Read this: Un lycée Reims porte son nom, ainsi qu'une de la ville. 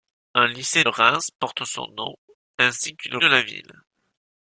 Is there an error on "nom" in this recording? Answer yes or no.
no